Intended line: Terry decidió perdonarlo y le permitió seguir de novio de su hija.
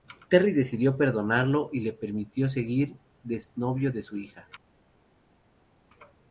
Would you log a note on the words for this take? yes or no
no